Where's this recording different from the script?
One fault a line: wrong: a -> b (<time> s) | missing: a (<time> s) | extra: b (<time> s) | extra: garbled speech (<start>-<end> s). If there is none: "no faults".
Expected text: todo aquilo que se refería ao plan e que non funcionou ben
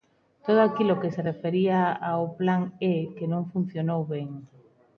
no faults